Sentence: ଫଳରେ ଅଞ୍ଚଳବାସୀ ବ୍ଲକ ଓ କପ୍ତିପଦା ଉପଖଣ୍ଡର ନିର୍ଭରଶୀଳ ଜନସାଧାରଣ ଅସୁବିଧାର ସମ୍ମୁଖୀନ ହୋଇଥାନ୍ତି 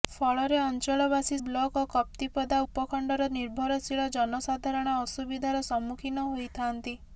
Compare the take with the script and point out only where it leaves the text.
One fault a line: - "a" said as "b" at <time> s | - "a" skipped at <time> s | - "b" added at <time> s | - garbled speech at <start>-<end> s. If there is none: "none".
none